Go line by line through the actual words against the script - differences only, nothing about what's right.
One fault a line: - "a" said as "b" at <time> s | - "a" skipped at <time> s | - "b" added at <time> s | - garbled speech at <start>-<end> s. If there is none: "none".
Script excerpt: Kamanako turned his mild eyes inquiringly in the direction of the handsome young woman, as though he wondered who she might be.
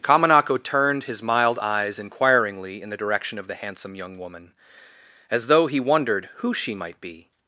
none